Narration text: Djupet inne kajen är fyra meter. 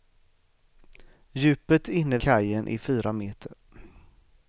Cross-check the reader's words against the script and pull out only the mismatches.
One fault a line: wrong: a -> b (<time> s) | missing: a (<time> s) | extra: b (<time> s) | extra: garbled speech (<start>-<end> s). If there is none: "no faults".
no faults